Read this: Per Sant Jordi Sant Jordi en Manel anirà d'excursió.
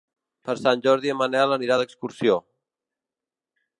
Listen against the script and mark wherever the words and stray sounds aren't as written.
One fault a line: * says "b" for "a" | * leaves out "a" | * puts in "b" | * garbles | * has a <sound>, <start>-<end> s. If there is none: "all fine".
* leaves out "Sant Jordi"